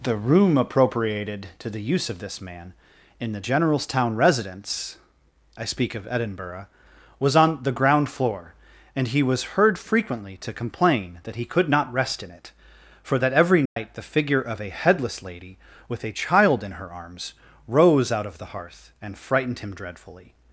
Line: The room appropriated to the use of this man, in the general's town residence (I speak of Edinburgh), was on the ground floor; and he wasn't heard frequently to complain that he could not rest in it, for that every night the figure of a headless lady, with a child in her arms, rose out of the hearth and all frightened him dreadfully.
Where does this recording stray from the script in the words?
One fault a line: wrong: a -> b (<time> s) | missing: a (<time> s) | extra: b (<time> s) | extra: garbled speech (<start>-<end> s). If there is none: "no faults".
wrong: wasn't -> was (9.2 s)
missing: all (19.2 s)